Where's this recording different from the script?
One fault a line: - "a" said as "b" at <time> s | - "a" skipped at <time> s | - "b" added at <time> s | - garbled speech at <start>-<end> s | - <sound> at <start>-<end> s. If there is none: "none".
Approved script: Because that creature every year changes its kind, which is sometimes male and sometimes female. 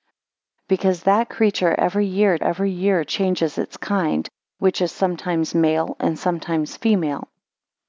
- "every year" added at 2.4 s